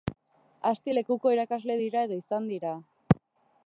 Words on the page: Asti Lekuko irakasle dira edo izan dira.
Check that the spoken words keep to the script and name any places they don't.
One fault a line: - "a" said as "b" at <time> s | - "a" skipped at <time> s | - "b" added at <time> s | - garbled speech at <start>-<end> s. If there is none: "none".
none